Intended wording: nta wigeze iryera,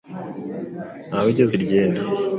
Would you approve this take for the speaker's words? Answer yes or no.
yes